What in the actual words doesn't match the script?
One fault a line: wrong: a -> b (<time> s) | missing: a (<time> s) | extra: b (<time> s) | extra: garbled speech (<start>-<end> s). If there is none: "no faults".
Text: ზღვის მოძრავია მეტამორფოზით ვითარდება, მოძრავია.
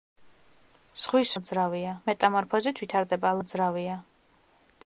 no faults